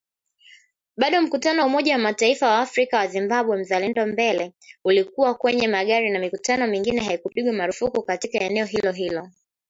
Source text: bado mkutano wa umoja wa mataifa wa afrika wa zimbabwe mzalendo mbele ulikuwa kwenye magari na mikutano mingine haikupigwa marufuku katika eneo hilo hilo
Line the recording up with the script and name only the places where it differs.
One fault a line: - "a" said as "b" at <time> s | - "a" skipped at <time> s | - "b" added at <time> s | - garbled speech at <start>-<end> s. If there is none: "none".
none